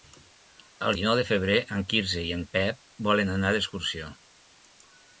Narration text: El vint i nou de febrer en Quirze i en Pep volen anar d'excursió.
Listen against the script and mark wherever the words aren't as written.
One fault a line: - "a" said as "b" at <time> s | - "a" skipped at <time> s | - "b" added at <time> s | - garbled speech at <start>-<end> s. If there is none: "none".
- "vint" skipped at 0.9 s